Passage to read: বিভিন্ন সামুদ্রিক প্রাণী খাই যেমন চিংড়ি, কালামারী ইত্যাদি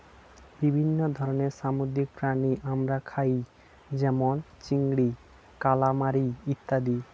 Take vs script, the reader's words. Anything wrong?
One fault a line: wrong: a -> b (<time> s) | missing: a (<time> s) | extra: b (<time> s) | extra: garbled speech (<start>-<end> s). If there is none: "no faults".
extra: ধরনের (1.2 s)
extra: আমরা (2.6 s)